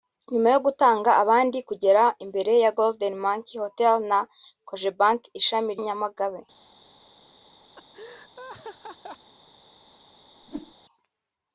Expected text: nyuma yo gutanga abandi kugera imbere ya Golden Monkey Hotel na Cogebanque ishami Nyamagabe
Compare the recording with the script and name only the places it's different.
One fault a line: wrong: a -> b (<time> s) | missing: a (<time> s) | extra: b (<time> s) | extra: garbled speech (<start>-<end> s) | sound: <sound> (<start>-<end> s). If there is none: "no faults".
sound: laugh (7.8-9.3 s)
sound: whoosh (10.4-10.7 s)